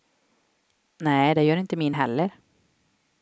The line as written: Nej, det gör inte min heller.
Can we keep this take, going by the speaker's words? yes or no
yes